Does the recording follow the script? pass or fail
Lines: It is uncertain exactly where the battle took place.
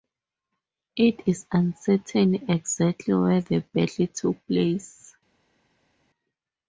pass